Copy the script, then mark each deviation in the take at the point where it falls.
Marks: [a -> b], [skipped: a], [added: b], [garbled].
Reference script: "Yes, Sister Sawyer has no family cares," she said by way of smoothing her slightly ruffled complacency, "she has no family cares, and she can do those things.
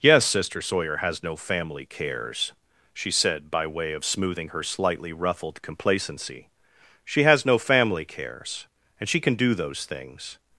"Yes, Sister Sawyer has no family cares," she said by way of smoothing her slightly ruffled complacency, "she has no family cares, and she can do those things.